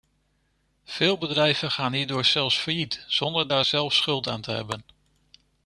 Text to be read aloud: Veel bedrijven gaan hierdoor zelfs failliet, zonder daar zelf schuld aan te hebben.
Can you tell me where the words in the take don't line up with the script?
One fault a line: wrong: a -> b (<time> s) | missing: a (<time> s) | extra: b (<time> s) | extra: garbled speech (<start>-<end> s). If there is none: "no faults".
no faults